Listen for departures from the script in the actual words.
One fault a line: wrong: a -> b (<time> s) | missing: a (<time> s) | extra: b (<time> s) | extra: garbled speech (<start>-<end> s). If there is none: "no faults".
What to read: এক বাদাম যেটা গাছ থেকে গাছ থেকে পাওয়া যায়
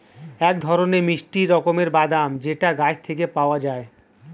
extra: ধরনের মিষ্টি রকমের (0.6 s)
missing: গাছ থেকে (3.2 s)